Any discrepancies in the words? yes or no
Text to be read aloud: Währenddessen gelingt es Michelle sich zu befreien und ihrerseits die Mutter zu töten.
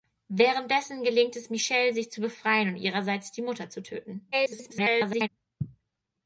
yes